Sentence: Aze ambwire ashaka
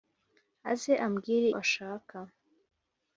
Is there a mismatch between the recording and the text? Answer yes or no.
no